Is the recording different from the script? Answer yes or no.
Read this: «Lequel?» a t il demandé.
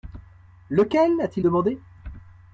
no